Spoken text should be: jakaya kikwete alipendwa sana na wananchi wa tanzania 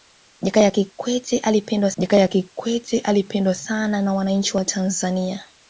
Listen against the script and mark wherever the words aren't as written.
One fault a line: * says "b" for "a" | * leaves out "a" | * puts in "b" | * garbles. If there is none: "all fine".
* puts in "jakaya kikwete alipendwa"